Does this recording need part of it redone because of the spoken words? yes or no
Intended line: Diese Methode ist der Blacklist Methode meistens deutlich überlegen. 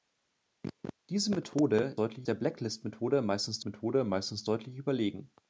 yes